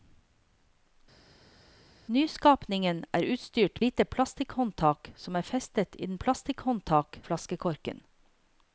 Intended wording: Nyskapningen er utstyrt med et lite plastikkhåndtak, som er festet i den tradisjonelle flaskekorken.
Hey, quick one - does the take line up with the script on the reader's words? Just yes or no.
no